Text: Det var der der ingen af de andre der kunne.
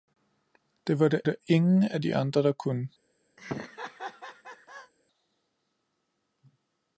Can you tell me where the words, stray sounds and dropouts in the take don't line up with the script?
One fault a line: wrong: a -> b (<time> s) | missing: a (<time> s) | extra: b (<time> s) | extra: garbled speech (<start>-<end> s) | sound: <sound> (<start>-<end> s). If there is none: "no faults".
sound: laugh (3.4-4.9 s)